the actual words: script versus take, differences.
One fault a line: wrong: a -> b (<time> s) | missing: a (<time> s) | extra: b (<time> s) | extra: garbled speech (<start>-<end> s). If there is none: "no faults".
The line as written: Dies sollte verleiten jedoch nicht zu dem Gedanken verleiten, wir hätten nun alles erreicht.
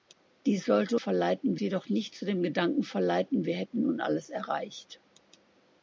no faults